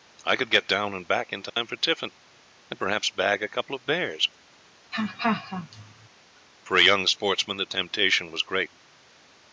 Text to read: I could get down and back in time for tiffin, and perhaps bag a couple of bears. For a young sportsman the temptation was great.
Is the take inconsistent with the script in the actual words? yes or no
no